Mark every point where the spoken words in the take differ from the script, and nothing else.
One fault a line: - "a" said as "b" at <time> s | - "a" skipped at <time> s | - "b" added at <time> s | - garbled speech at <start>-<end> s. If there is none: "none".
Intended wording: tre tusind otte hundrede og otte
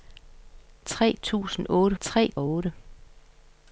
- "hundrede" said as "tre" at 2.0 s